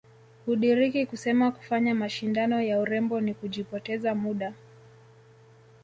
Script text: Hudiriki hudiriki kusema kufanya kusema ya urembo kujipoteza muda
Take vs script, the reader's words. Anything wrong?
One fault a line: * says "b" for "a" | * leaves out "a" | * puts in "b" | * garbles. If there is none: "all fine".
* leaves out "hudiriki"
* says "mashindano" for "kusema"
* puts in "ni"